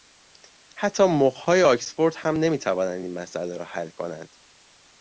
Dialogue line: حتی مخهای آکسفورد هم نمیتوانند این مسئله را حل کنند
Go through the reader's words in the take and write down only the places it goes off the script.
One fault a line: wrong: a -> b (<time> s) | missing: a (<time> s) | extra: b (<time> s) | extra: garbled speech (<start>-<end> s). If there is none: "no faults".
no faults